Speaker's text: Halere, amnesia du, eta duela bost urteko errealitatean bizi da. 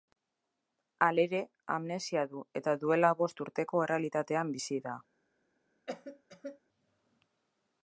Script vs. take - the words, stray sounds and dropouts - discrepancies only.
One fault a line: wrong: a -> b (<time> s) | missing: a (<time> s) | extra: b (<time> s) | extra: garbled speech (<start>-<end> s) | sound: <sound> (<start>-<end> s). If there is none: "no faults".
sound: cough (5.9-6.6 s)